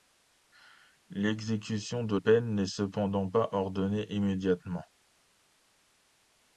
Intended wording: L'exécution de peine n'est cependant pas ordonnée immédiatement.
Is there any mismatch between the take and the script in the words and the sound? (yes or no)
no